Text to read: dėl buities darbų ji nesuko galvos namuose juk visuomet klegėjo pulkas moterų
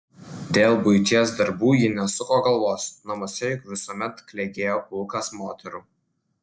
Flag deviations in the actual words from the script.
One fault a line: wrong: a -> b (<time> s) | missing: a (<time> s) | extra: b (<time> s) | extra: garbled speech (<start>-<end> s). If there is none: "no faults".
no faults